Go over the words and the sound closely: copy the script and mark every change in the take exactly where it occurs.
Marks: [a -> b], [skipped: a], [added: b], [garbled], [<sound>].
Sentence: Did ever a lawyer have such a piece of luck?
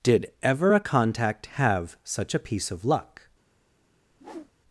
Did ever a [lawyer -> contact] have such a piece of luck? [whoosh]